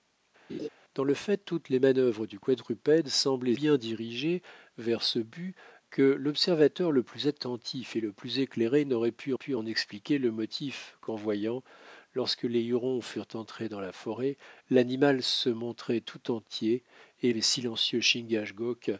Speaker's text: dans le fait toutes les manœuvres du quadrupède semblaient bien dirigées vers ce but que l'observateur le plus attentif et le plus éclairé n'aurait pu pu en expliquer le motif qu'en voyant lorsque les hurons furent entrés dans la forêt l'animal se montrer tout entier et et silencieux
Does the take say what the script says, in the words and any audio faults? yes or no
no